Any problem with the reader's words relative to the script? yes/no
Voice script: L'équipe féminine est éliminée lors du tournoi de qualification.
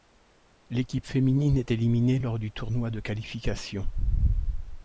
no